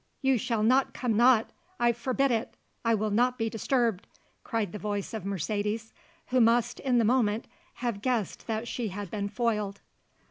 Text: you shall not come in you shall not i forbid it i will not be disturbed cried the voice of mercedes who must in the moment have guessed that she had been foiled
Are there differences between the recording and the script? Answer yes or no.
yes